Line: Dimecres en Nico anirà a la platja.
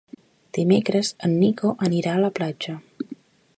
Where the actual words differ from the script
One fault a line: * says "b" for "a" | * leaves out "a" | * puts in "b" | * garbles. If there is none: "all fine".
all fine